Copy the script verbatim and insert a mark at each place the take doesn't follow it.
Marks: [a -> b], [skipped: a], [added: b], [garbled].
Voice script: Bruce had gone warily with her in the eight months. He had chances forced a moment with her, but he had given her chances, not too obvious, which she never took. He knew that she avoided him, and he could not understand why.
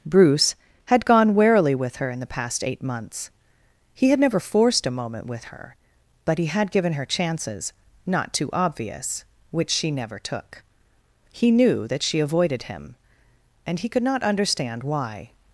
Bruce had gone warily with her in the [added: past] eight months. He had [chances -> never] forced a moment with her, but he had given her chances, not too obvious, which she never took. He knew that she avoided him, and he could not understand why.